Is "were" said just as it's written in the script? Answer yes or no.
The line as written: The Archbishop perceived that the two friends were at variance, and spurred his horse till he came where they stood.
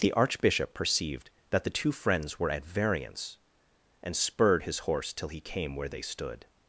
yes